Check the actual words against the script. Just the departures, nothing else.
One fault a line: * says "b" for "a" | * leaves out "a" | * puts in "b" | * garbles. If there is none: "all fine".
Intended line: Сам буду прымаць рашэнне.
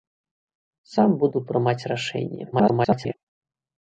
* garbles